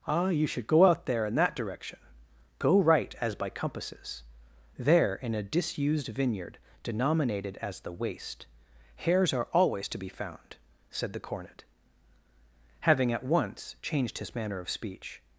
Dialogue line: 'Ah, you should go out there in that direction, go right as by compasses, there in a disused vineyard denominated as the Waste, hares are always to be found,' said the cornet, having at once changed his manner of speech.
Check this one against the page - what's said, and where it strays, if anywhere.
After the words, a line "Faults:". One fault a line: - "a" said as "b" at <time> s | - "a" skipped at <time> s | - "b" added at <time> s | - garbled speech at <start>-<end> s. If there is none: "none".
'Ah, you should go out there in that direction, go right as by compasses, there in a disused vineyard denominated as the Waste, hares are always to be found,' said the cornet, having at once changed his manner of speech.
Faults:
none